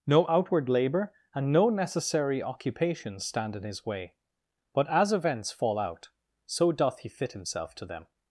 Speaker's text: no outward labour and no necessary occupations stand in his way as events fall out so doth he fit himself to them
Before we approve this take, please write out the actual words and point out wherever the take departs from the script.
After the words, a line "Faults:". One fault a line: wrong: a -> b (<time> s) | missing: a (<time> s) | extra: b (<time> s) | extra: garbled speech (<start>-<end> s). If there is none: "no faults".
no outward labour and no necessary occupations stand in his way but as events fall out so doth he fit himself to them
Faults:
extra: but (4.7 s)